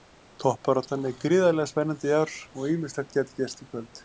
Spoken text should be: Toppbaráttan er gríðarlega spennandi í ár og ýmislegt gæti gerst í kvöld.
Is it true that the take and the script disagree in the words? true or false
false